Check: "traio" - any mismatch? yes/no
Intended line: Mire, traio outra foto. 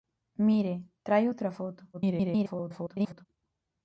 no